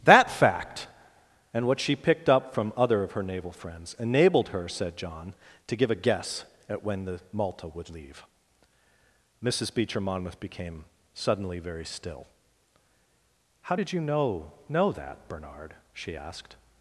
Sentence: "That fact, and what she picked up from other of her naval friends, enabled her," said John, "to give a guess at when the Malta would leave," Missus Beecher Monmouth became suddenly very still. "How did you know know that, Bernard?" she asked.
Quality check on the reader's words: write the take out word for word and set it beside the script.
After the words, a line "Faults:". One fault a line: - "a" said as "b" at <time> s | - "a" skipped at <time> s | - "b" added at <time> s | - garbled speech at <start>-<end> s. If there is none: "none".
"That fact, and what she picked up from other of her naval friends, enabled her," said John, "to give a guess at when the Malta would leave," Missus Beecher Monmouth became suddenly very still. "How did you know know that, Bernard?" she asked.
Faults:
none